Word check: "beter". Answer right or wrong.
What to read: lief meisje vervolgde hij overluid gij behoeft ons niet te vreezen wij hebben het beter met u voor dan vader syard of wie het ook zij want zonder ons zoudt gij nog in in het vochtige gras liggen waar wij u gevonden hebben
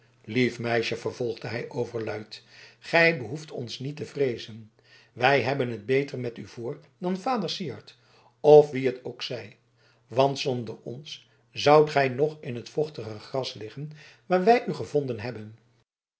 right